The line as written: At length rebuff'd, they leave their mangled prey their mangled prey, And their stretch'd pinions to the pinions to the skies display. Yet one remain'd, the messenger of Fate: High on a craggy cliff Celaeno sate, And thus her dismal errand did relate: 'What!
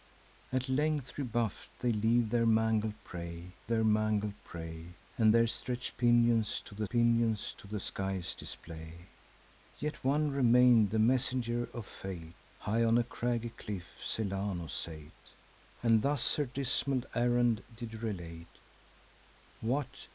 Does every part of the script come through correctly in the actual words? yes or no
yes